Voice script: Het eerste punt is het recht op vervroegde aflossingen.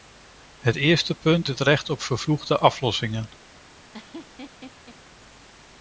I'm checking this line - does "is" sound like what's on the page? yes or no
no